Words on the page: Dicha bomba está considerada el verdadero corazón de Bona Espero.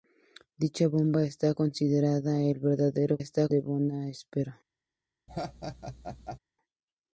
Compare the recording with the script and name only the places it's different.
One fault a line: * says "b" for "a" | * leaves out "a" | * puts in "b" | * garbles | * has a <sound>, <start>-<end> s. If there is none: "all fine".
* says "está" for "corazón"
* has a laugh, 5.3-6.4 s